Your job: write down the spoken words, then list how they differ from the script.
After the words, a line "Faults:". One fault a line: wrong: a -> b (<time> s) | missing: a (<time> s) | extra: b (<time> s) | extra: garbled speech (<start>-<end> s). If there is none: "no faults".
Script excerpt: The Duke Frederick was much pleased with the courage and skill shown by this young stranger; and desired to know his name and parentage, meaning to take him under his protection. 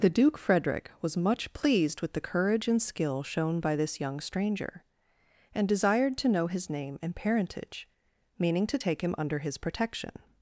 The Duke Frederick was much pleased with the courage and skill shown by this young stranger; and desired to know his name and parentage, meaning to take him under his protection.
Faults:
no faults